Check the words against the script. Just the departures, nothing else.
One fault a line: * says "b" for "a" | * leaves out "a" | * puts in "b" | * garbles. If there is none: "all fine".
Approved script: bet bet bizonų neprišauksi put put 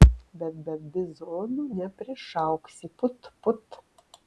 all fine